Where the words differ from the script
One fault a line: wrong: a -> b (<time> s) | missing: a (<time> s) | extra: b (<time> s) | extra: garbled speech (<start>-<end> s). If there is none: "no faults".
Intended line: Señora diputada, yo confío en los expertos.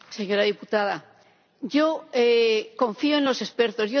no faults